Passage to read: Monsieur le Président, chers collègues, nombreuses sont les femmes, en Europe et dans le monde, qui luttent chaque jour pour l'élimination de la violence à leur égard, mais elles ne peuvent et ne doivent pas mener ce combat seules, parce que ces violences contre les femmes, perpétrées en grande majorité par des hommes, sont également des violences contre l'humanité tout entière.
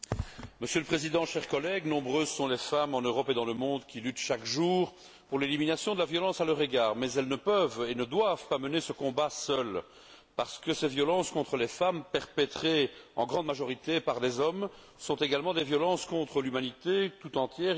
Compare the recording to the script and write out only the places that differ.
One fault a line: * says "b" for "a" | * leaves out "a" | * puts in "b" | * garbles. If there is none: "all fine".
all fine